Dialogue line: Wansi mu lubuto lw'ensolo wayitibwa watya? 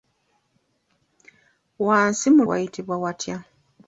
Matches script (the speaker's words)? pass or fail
fail